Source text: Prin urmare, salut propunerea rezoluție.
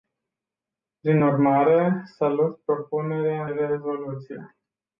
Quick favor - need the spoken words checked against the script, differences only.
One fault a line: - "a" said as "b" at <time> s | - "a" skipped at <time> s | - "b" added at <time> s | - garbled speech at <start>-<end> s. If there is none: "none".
none